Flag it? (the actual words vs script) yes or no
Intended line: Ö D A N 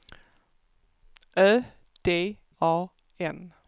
no